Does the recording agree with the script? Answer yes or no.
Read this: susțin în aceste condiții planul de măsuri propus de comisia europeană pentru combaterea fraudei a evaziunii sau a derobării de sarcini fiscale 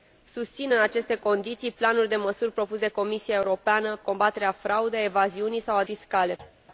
no